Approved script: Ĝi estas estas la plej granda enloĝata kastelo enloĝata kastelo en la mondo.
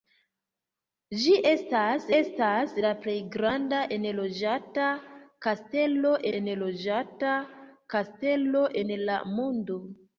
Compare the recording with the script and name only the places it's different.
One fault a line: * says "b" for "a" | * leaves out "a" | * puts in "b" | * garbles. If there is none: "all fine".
all fine